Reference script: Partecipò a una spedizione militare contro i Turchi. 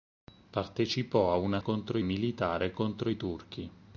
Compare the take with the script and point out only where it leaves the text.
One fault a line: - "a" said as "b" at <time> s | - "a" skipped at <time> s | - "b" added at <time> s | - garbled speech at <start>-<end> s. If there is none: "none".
- "spedizione" said as "contro" at 1.6 s